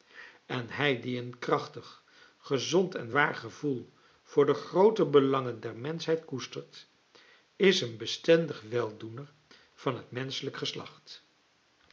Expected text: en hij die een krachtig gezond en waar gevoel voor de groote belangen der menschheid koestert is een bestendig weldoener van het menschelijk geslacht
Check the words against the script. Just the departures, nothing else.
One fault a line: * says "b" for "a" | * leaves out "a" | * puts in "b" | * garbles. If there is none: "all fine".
all fine